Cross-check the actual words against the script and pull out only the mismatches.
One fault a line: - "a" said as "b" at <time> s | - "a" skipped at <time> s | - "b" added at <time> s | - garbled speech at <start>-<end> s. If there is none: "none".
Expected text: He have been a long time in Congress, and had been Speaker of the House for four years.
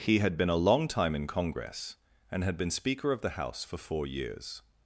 - "have" said as "had" at 0.2 s